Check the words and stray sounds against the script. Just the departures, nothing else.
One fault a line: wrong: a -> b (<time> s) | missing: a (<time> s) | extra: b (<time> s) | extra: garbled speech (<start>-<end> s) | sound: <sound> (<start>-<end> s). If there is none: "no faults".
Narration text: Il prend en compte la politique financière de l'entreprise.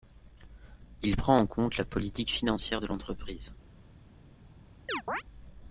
sound: chirp (4.9-5.2 s)